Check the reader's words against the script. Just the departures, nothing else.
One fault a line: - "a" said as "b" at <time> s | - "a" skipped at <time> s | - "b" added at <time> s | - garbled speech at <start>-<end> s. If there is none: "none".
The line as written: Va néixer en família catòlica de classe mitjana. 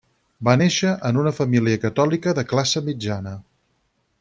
- "una" added at 1.2 s